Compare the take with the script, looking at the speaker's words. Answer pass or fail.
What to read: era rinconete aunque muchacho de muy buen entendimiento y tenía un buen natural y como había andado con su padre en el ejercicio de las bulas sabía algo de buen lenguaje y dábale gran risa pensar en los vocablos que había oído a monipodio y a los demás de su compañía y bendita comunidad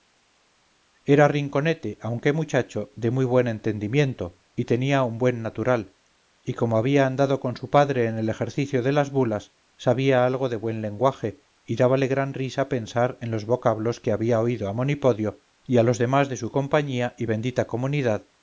pass